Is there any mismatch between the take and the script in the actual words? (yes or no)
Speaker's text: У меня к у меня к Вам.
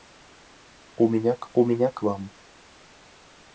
no